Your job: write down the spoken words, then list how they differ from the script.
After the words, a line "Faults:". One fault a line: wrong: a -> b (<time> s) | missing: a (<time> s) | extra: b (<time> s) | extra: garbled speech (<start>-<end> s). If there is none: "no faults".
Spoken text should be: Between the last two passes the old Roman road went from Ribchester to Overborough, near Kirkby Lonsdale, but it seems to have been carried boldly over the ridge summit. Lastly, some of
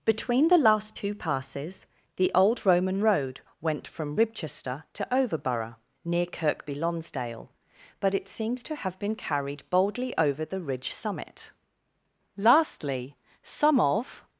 Between the last two passes the old Roman road went from Ribchester to Overborough, near Kirkby Lonsdale, but it seems to have been carried boldly over the ridge summit. Lastly, some of
Faults:
no faults